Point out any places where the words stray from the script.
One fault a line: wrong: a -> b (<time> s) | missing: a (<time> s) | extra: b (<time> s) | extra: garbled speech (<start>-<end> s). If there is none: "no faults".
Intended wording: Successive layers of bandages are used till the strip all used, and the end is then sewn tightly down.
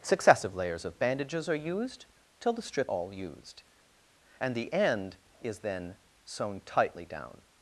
no faults